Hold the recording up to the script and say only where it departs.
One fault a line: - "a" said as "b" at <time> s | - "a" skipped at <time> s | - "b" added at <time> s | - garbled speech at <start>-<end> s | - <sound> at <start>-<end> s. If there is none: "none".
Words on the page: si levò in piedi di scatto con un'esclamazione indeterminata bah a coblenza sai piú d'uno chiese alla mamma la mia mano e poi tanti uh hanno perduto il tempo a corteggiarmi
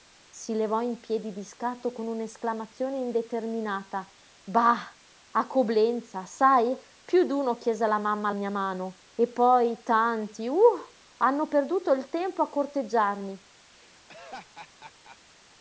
- "la" skipped at 8.3 s
- laugh at 13.7-15.2 s